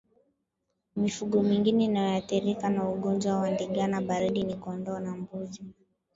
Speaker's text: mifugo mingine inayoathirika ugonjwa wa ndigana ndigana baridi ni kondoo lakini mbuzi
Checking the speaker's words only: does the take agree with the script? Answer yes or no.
no